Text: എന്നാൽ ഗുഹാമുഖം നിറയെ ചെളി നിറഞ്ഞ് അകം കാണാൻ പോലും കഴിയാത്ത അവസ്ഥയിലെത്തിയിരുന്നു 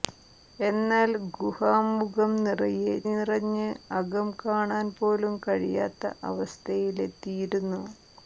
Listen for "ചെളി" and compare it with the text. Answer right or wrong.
wrong